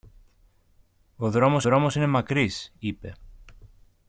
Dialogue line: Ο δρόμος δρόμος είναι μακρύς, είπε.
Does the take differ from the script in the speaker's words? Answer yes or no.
no